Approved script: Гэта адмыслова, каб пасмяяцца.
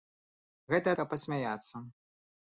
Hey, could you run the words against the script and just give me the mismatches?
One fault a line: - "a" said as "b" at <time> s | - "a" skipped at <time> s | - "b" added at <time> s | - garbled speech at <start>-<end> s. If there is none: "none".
- "адмыслова" skipped at 0.9 s